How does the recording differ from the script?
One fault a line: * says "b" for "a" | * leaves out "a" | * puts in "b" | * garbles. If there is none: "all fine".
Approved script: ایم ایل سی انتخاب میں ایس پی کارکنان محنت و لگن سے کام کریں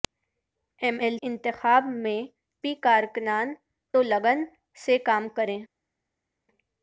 * leaves out "سی"
* leaves out "ایس"
* leaves out "محنت"